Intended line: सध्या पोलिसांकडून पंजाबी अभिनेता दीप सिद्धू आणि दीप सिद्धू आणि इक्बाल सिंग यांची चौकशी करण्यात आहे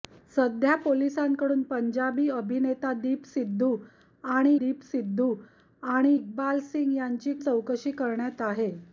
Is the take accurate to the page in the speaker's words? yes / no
yes